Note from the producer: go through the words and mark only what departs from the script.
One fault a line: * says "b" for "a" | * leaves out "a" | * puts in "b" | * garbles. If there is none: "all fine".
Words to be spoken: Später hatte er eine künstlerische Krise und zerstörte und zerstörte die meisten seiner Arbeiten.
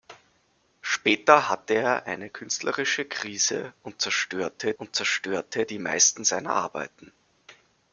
all fine